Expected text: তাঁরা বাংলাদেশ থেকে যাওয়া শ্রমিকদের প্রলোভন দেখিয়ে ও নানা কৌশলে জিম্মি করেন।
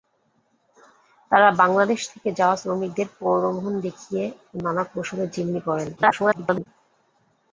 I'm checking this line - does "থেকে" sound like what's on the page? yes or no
yes